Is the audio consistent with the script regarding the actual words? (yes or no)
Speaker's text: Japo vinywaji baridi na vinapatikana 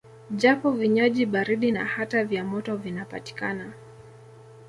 no